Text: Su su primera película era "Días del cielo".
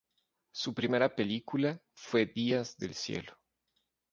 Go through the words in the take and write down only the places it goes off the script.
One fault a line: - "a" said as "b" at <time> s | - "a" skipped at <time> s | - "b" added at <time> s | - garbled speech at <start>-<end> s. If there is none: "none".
- "su" skipped at 0.7 s
- "era" said as "fue" at 1.9 s